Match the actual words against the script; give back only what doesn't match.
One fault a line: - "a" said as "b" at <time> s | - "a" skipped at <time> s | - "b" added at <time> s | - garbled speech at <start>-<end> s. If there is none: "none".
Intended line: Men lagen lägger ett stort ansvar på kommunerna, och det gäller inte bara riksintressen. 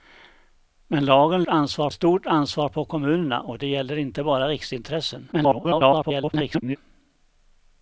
- "lägger" said as "ansvar" at 1.5 s
- garbled speech at 5.3-6.8 s